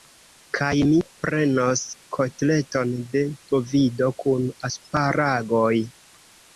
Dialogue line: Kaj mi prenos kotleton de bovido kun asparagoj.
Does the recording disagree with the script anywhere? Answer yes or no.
no